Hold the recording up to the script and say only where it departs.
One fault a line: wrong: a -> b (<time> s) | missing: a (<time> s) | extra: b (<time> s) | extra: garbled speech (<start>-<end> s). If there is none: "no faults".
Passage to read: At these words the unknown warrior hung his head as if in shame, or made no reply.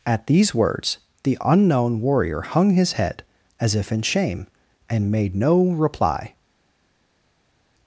wrong: or -> and (4.9 s)